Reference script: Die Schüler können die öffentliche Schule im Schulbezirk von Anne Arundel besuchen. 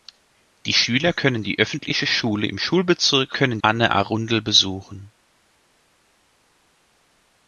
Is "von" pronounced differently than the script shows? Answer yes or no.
yes